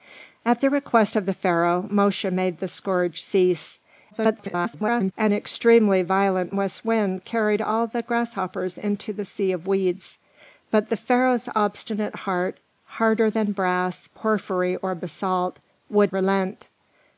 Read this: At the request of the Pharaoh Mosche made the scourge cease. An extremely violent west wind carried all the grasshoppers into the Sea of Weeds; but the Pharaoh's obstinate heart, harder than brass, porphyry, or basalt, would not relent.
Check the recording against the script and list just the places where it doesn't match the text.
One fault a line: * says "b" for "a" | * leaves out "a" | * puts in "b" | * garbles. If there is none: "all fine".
* garbles
* leaves out "not"